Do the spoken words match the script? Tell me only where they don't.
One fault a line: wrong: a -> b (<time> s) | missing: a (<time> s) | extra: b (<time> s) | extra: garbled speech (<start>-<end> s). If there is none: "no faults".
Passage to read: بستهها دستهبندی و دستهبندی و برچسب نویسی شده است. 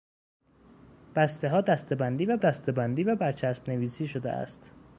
no faults